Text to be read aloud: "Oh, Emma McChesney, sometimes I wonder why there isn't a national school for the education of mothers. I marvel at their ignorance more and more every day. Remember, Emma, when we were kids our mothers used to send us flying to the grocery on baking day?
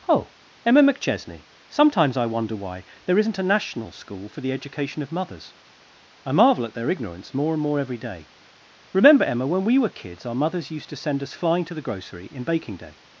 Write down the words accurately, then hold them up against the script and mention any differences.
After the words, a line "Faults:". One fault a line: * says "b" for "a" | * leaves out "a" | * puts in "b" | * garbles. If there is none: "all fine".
"Oh, Emma McChesney, sometimes I wonder why there isn't a national school for the education of mothers. I marvel at their ignorance more and more every day. Remember, Emma, when we were kids our mothers used to send us flying to the grocery in baking day?
Faults:
* says "in" for "on"